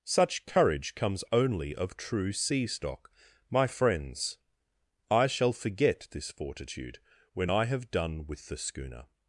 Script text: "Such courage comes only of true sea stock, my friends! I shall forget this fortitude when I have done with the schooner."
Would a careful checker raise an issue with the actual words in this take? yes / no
no